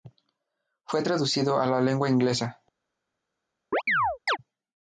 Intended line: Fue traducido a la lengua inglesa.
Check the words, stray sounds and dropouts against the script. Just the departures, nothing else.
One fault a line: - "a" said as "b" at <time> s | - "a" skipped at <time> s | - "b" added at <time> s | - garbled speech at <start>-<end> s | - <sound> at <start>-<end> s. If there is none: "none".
- chirp at 3.7-4.4 s